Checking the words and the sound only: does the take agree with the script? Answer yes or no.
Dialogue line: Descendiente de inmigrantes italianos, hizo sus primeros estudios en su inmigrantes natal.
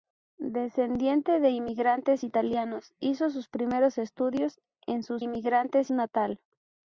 yes